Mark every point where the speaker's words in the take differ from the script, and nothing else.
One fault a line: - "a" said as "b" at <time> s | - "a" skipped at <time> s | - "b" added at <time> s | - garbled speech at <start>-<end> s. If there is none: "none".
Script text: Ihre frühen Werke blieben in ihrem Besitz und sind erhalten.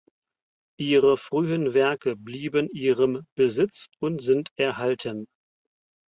- "in" skipped at 2.7 s